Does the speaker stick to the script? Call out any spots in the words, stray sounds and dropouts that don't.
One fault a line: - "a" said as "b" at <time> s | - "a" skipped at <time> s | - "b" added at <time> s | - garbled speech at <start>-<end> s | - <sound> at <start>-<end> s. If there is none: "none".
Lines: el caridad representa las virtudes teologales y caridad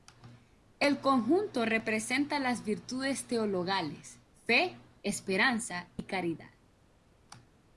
- "caridad" said as "conjunto" at 1.0 s
- "fe esperanza" added at 4.3 s